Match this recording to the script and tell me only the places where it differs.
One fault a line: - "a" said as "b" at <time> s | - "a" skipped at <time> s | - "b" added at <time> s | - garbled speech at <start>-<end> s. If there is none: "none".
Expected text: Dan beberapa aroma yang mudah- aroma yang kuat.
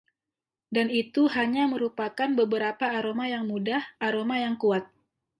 - "itu hanya merupakan" added at 0.9 s